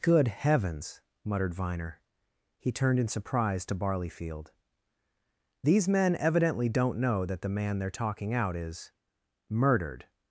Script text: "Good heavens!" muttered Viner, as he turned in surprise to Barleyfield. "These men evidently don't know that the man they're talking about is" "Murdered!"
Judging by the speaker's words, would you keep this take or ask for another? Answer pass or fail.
fail